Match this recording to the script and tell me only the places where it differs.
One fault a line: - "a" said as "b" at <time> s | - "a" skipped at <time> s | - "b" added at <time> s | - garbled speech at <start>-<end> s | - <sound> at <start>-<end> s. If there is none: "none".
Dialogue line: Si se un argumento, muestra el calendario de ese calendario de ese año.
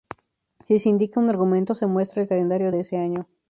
- "indica" added at 0.9 s
- "se" added at 1.8 s
- "calendario de ese" skipped at 3.0 s